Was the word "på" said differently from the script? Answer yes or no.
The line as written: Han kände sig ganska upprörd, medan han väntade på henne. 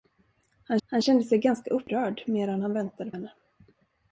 yes